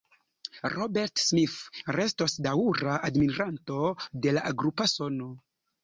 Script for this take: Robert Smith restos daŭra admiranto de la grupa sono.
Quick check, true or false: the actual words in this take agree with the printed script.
true